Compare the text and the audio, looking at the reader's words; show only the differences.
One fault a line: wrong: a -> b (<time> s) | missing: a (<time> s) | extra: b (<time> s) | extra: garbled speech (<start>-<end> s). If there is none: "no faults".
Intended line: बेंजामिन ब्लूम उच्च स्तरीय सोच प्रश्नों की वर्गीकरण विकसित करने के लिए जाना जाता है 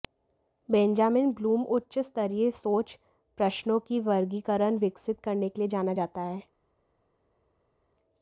no faults